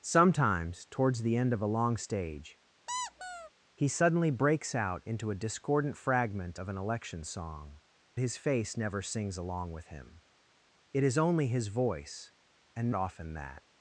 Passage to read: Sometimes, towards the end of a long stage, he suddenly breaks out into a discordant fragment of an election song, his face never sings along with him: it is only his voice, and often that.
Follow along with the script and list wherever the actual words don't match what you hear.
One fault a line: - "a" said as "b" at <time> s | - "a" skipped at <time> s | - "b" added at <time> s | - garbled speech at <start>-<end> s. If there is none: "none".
none